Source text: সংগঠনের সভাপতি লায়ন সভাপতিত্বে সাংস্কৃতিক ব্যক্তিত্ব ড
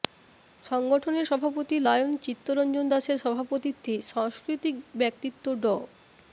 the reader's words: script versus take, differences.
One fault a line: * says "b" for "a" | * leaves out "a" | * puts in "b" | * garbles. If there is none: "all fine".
* puts in "চিত্তরঞ্জন দাসের"